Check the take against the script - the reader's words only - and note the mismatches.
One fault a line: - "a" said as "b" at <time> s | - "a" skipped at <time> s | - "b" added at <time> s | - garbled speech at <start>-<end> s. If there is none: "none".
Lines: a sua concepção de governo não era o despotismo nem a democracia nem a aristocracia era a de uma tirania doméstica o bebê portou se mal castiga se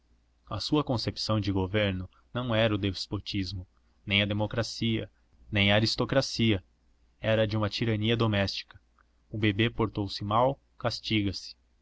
none